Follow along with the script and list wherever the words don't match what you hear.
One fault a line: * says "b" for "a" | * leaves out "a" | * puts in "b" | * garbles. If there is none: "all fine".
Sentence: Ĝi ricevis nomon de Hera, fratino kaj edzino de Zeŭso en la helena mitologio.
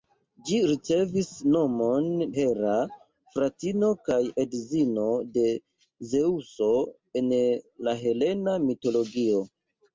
* leaves out "de"